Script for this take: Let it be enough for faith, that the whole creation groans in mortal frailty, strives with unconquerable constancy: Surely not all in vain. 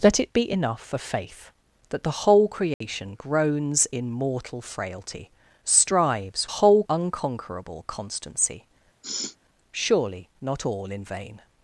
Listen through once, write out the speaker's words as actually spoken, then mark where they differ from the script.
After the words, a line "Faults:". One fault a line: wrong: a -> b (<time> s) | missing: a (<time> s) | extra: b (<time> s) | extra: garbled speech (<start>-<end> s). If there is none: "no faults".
Let it be enough for faith, that the whole creation groans in mortal frailty, strives whole unconquerable constancy: Surely not all in vain.
Faults:
wrong: with -> whole (6.5 s)